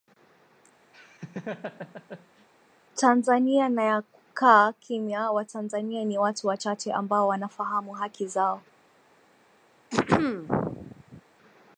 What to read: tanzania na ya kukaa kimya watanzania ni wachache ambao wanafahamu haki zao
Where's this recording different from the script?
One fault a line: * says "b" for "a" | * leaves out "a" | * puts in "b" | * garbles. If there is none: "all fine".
* puts in "watu"